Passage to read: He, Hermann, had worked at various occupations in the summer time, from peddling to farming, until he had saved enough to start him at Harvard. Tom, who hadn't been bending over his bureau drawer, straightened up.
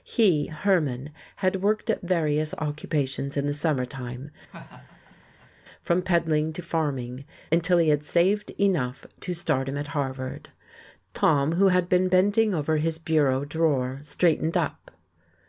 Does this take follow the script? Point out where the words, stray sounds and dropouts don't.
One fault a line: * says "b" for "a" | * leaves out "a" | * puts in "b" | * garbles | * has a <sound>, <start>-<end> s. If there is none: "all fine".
* has a laugh, 4.5-5.5 s
* says "had" for "hadn't"